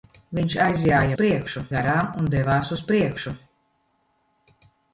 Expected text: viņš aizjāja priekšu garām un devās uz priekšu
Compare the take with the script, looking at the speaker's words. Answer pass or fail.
pass